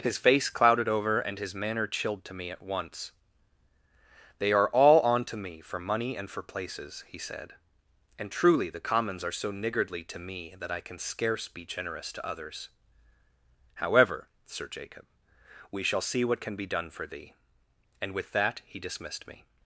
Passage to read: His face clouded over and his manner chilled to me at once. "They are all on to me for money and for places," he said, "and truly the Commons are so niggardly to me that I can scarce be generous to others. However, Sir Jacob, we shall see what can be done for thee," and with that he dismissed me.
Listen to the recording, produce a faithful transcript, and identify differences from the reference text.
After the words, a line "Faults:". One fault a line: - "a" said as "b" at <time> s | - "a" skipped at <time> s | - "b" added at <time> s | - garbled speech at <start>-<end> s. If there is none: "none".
His face clouded over and his manner chilled to me at once. "They are all on to me for money and for places," he said, "and truly the Commons are so niggardly to me that I can scarce be generous to others. However, Sir Jacob, we shall see what can be done for thee," and with that he dismissed me.
Faults:
none